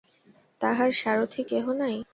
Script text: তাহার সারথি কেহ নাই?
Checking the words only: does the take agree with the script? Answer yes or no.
yes